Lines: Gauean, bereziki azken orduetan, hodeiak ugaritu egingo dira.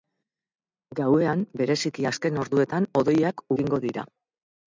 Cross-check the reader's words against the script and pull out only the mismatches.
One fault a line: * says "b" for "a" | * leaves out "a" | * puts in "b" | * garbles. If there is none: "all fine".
* leaves out "ugaritu"